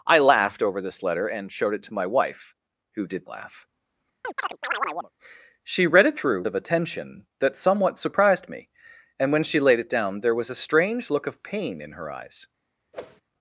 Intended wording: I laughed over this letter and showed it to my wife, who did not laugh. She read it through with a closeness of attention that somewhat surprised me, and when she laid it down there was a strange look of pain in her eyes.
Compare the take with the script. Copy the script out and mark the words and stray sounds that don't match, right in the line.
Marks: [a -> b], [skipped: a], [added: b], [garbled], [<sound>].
I laughed over this letter and showed it to my wife, who did [skipped: not] laugh. [chirp] She read it through [skipped: with a closeness] of attention that somewhat surprised me, and when she laid it down there was a strange look of pain in her eyes. [whoosh]